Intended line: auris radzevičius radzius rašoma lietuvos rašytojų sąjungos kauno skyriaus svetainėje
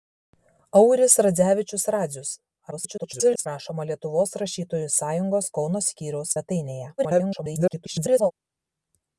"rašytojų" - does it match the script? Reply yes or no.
yes